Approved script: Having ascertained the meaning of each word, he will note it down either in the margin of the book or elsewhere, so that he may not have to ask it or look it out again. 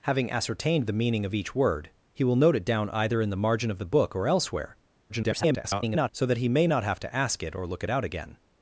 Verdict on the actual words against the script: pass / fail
fail